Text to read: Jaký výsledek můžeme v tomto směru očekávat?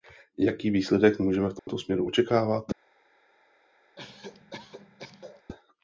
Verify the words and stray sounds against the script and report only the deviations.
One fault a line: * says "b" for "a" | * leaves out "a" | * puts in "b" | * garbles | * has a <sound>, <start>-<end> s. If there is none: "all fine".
* has a dropout, 1.6-1.7 s
* has a cough, 4.0-5.4 s